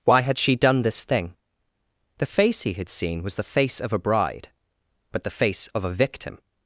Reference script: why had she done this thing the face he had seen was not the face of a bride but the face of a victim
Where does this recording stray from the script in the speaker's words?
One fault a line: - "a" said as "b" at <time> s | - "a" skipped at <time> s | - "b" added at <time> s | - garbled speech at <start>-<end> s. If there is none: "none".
- "not" skipped at 3.4 s